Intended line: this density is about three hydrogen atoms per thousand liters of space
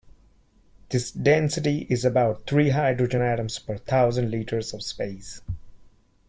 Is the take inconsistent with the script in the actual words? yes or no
no